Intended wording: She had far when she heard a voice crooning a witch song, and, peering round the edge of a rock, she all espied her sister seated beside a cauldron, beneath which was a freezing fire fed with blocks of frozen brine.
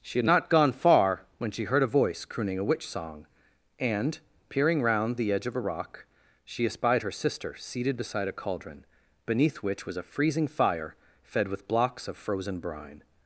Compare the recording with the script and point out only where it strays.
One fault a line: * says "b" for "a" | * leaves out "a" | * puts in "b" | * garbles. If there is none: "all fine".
* puts in "not gone"
* leaves out "all"